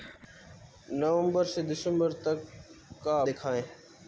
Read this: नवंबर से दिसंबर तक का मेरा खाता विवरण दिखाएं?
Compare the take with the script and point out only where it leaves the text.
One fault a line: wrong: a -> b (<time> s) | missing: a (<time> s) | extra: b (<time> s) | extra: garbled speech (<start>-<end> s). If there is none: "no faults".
missing: मेरा खाता विवरण (3.2 s)